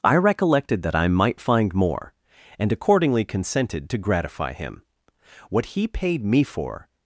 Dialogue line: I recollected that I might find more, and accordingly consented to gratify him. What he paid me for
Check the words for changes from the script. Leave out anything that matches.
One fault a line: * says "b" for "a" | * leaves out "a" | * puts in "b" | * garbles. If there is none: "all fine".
all fine